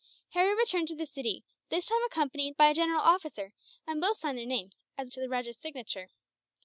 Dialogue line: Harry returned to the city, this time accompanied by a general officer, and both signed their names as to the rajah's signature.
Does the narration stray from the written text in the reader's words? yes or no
no